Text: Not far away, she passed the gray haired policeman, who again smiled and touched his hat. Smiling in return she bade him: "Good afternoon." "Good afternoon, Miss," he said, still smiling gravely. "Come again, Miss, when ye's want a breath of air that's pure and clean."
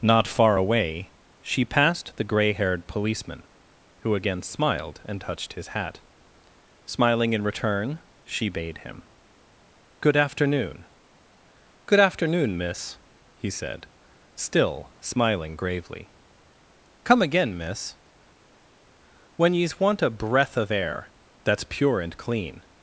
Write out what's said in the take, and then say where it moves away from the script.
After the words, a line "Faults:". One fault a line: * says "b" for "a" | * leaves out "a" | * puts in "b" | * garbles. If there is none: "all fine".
Not far away, she passed the gray haired policeman, who again smiled and touched his hat. Smiling in return she bade him: "Good afternoon." "Good afternoon, Miss," he said, still smiling gravely. "Come again, Miss, when ye's want a breath of air that's pure and clean."
Faults:
all fine